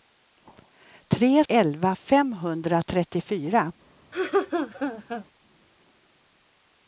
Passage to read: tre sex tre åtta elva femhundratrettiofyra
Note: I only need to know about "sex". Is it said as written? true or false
false